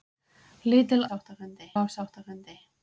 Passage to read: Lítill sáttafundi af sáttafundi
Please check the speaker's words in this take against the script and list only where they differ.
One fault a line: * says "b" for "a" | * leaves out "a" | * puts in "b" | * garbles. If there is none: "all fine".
all fine